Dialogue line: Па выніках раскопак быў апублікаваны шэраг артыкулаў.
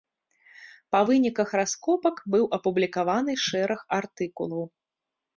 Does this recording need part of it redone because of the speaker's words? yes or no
no